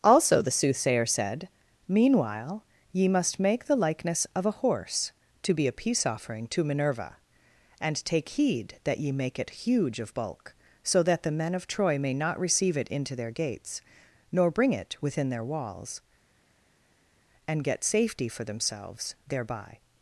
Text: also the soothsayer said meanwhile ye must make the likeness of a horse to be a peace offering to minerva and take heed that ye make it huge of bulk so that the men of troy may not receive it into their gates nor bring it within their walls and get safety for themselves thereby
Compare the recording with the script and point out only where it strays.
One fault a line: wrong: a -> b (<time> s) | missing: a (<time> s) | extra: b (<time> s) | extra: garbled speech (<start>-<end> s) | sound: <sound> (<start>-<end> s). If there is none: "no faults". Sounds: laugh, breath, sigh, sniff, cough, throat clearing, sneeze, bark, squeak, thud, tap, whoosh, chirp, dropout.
no faults